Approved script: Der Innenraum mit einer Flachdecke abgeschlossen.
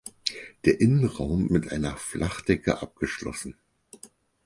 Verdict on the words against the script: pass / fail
pass